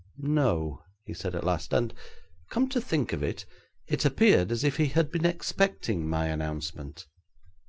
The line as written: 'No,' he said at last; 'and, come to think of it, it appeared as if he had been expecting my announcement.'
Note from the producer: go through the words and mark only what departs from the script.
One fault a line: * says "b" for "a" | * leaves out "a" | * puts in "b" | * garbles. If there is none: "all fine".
all fine